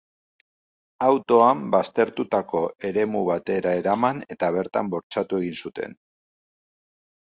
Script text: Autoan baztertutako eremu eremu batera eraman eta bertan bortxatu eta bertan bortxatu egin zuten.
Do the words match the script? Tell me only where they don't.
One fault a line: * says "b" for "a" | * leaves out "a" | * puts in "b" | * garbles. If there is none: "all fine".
* leaves out "eremu"
* leaves out "eta bertan bortxatu"